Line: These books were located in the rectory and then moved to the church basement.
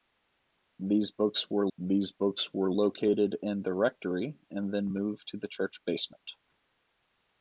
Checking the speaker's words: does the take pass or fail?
fail